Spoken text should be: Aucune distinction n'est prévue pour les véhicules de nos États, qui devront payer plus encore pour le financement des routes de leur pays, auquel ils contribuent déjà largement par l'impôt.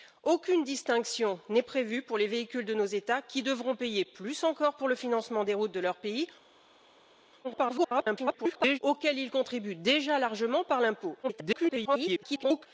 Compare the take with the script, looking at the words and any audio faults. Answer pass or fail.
fail